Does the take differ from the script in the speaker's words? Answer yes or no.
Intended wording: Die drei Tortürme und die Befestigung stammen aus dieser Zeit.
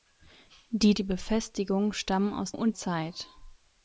yes